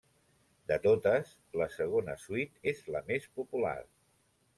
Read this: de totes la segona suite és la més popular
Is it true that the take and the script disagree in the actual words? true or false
false